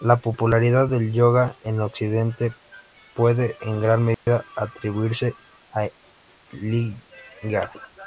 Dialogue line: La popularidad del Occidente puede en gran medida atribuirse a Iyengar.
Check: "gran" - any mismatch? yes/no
no